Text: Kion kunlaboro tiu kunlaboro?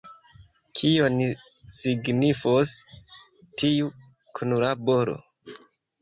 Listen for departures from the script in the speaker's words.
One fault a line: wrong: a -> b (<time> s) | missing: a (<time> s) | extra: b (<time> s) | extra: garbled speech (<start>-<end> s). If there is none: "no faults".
wrong: kunlaboro -> signifos (1.7 s)